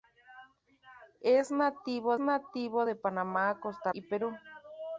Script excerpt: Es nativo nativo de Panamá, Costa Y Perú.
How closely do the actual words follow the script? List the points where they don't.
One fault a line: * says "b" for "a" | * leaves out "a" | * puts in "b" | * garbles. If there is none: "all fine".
all fine